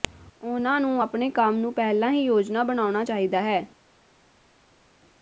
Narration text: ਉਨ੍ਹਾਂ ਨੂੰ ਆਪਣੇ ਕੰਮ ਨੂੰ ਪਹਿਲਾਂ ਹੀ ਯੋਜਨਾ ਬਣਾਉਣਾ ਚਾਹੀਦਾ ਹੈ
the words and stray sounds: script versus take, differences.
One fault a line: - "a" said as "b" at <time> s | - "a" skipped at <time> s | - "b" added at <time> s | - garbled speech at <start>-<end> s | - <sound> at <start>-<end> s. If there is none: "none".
none